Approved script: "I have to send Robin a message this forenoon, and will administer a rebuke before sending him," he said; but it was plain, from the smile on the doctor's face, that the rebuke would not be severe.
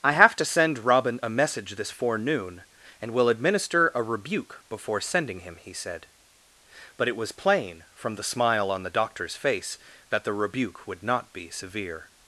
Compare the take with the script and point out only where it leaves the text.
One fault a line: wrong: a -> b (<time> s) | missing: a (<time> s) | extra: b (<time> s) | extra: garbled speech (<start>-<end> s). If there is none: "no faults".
no faults